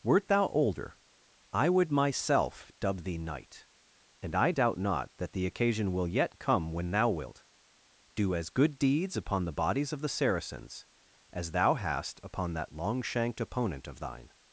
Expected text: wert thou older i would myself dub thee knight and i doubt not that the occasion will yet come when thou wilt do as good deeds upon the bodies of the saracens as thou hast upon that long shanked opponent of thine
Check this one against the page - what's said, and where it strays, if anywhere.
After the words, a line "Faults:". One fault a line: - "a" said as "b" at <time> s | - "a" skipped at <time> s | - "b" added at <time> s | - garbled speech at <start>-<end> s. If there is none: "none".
wert thou older i would myself dub thee knight and i doubt not that the occasion will yet come when thou wilt do as good deeds upon the bodies of the saracens as thou hast upon that long shanked opponent of thine
Faults:
none